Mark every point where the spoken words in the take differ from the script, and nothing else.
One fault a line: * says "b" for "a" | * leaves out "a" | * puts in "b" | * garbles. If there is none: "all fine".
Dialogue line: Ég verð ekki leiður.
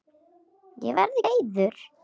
* leaves out "ekki"